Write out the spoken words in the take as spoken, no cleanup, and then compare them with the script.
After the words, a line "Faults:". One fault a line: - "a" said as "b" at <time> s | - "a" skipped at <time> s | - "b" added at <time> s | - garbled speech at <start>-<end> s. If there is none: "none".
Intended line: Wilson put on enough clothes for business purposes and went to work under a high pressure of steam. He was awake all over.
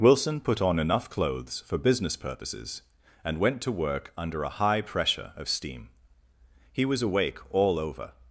Wilson put on enough clothes for business purposes and went to work under a high pressure of steam. He was awake all over.
Faults:
none